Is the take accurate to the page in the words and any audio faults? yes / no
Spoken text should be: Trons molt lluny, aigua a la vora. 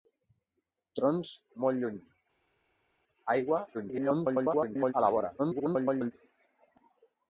no